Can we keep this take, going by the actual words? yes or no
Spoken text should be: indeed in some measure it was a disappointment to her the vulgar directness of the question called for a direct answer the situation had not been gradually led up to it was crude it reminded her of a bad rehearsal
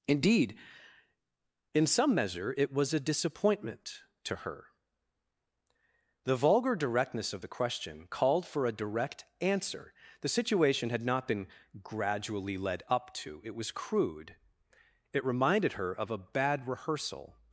yes